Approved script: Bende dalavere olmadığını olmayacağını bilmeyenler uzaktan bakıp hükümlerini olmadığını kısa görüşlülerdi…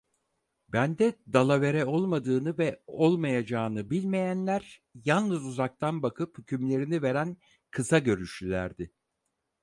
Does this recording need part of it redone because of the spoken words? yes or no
yes